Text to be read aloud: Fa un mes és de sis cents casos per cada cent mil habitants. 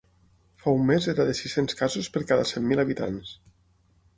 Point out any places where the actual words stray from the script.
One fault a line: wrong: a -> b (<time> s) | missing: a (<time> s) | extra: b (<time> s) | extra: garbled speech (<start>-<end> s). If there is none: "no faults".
wrong: és -> era (1.1 s)